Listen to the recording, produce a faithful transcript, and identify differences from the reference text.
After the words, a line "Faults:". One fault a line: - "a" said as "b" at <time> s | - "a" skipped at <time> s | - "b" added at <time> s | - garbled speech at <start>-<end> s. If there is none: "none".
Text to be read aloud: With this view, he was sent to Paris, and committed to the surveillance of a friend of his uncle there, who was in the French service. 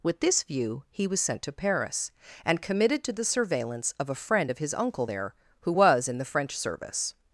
With this view, he was sent to Paris, and committed to the surveillance of a friend of his uncle there, who was in the French service.
Faults:
none